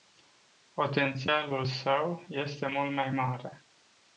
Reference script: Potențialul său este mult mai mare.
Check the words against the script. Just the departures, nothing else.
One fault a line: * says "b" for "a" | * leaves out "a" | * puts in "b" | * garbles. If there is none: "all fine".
all fine